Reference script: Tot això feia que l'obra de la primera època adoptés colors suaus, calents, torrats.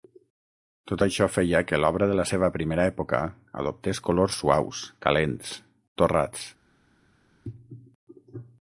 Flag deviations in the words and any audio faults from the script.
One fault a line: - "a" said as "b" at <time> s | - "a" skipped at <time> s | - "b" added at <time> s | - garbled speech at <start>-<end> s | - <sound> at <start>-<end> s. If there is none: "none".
- "seva" added at 2.3 s